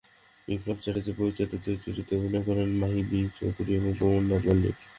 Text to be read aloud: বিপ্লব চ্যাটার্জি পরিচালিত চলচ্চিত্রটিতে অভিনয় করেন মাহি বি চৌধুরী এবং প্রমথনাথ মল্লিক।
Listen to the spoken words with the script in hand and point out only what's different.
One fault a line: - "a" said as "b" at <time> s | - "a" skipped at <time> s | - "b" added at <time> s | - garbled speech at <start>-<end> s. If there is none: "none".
none